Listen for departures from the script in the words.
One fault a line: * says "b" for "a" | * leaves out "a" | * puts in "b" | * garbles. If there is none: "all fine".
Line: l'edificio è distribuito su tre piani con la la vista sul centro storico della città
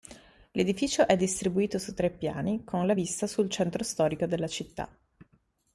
* leaves out "la"